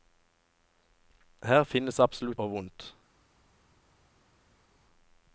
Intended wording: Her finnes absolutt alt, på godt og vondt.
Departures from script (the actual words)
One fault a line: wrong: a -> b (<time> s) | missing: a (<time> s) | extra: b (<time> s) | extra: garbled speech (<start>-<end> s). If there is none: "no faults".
missing: alt på godt (2.4 s)